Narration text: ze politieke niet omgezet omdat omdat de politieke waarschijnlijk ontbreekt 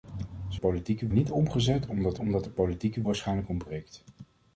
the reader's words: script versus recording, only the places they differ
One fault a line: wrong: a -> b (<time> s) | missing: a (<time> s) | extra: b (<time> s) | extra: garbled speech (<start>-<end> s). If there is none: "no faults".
no faults